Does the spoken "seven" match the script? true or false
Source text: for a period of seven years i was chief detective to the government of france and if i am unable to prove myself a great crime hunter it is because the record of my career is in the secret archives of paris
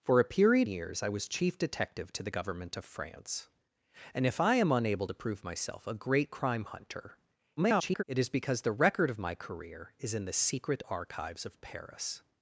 false